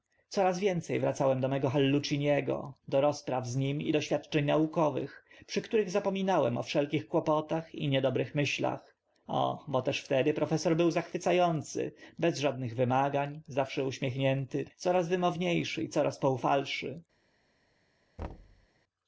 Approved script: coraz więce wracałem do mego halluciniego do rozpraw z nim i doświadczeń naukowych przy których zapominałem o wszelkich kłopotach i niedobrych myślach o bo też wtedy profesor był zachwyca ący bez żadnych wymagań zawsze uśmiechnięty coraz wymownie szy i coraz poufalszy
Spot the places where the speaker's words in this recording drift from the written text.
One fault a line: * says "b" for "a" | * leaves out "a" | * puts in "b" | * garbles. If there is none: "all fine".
all fine